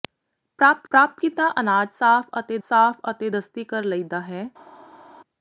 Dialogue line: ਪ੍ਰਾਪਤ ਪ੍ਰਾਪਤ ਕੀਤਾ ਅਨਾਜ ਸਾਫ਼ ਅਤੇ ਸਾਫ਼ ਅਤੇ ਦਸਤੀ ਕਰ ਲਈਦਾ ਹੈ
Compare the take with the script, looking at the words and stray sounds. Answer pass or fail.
pass